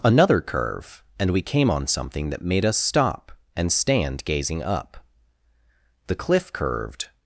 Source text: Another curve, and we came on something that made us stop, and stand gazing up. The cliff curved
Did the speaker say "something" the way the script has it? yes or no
yes